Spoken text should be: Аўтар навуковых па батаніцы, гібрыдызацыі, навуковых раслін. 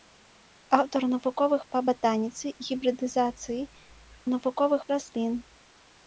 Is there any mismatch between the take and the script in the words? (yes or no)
no